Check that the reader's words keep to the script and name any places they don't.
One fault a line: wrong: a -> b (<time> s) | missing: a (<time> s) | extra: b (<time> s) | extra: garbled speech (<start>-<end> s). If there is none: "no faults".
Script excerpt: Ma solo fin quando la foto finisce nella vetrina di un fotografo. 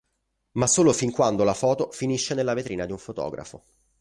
no faults